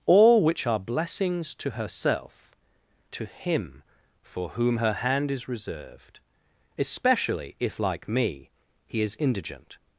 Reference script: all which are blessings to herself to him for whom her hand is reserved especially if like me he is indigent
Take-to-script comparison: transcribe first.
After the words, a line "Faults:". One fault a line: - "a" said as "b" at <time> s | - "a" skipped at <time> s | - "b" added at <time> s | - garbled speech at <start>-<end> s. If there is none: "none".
all which are blessings to herself to him for whom her hand is reserved especially if like me he is indigent
Faults:
none